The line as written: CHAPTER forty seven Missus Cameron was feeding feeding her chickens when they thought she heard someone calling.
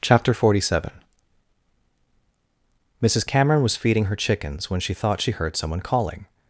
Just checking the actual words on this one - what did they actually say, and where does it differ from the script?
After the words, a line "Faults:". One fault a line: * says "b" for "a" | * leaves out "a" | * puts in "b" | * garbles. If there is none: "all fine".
CHAPTER forty seven Missus Cameron was feeding her chickens when she thought she heard someone calling.
Faults:
* leaves out "feeding"
* says "she" for "they"